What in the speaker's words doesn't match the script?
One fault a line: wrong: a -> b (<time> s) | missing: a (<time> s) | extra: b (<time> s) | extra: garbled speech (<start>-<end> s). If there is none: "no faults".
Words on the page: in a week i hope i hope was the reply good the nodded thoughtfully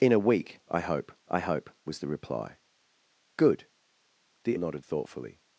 no faults